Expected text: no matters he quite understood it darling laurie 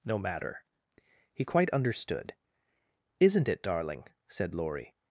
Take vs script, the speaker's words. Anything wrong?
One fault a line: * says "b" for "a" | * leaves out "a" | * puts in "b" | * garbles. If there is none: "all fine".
* says "matter" for "matters"
* puts in "isn't"
* puts in "said"